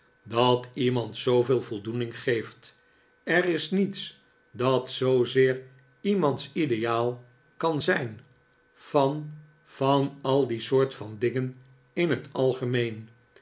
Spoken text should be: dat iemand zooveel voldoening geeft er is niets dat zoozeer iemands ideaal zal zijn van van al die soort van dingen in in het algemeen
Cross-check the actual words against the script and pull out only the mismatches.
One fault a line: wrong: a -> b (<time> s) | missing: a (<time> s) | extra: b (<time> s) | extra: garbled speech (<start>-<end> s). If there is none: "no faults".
wrong: zal -> kan (7.6 s)
missing: in (12.1 s)